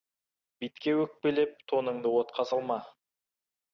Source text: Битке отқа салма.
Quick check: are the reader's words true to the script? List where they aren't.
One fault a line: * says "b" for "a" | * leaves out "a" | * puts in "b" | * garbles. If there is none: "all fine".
* puts in "өкпелеп тоныңды"